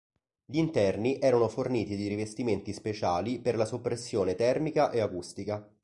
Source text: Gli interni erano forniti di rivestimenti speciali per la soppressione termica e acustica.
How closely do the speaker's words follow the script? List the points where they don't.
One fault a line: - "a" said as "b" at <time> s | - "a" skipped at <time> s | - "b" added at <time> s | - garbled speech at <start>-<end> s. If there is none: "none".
none